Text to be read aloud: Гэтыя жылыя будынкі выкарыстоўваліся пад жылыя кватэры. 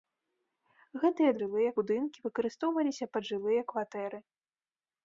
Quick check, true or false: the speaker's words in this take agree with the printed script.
true